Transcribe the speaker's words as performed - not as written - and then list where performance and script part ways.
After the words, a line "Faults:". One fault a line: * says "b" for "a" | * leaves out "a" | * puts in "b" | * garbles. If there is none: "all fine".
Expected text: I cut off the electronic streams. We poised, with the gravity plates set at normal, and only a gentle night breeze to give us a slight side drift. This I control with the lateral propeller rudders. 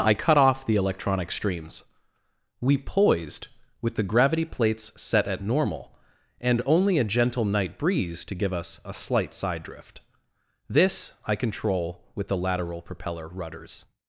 I cut off the electronic streams. We poised, with the gravity plates set at normal, and only a gentle night breeze to give us a slight side drift. This I control with the lateral propeller rudders.
Faults:
all fine